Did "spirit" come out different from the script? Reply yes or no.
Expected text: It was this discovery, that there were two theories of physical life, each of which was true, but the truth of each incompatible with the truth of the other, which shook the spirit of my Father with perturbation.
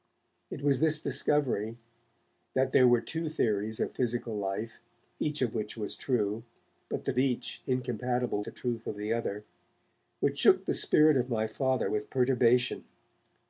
no